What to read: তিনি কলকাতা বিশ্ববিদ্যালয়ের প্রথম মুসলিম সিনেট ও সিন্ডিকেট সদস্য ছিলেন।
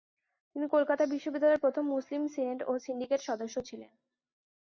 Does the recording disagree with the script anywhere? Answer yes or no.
no